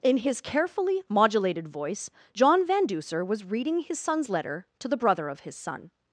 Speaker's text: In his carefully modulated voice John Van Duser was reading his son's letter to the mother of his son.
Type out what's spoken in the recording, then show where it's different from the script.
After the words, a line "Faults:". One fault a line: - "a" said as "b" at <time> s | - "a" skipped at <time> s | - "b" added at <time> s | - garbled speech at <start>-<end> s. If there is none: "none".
In his carefully modulated voice John Van Duser was reading his son's letter to the brother of his son.
Faults:
- "mother" said as "brother" at 5.0 s